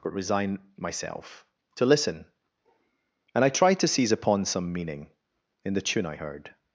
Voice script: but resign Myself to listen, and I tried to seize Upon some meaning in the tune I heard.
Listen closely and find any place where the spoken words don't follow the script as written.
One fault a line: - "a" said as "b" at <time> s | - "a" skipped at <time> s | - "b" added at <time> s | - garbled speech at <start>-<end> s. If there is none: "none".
none